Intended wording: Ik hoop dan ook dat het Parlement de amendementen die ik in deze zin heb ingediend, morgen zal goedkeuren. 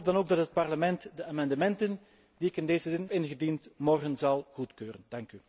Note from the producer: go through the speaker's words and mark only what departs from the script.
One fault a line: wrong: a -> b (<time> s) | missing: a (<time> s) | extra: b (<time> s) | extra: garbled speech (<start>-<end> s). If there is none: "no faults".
missing: heb (3.1 s)